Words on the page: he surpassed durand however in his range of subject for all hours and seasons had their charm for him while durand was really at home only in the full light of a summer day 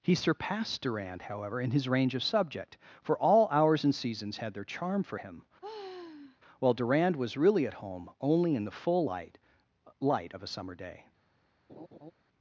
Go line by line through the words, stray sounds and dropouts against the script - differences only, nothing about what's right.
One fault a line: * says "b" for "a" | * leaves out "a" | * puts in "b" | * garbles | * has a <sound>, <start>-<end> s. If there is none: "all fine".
* has a sigh, 5.6-6.4 s
* puts in "light"
* has a laugh, 11.7-12.1 s